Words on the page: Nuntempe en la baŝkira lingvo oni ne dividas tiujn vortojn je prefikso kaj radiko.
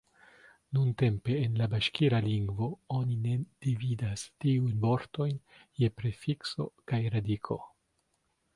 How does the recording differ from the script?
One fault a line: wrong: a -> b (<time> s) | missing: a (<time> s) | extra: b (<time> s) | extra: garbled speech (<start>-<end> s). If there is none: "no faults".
no faults